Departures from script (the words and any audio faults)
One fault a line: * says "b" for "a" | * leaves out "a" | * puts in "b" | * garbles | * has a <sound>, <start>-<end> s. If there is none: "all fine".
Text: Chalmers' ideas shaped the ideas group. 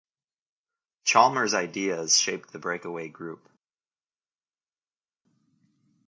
* says "breakaway" for "ideas"